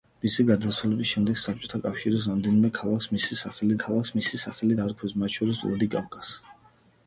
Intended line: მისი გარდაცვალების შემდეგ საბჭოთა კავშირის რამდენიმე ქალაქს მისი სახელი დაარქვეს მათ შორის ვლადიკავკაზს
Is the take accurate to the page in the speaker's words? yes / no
no